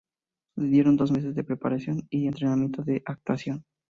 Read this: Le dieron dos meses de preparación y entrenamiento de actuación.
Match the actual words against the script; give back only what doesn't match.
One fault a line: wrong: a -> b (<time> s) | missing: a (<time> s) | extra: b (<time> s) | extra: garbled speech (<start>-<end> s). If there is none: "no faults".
no faults